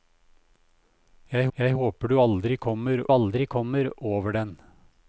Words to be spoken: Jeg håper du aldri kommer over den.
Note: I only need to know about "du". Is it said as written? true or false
true